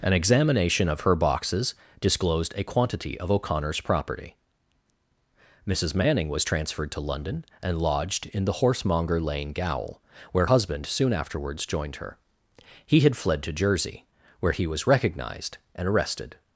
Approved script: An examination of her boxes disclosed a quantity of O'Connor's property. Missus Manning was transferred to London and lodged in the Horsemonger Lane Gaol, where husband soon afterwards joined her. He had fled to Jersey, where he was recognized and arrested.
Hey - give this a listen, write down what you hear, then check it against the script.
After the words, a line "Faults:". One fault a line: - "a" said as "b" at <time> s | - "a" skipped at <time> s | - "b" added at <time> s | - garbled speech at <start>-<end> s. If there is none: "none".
An examination of her boxes disclosed a quantity of O'Connor's property. Missus Manning was transferred to London and lodged in the Horsemonger Lane Gaol, where husband soon afterwards joined her. He had fled to Jersey, where he was recognized and arrested.
Faults:
none